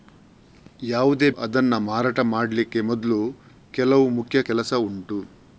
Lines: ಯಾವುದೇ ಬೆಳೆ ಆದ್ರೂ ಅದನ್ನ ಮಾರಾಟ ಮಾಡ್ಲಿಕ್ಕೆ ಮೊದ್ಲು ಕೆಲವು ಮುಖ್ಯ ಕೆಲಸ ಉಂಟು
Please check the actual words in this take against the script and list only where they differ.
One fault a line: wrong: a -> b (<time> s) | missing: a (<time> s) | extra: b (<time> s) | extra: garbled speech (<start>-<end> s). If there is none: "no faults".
missing: ಬೆಳೆ ಆದ್ರೂ (1.3 s)